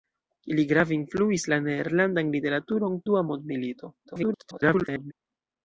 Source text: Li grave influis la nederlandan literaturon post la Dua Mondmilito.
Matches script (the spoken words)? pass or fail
fail